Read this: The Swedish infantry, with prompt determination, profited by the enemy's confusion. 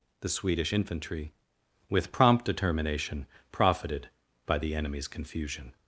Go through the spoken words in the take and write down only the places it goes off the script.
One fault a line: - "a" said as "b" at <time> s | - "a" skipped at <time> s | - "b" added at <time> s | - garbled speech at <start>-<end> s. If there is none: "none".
none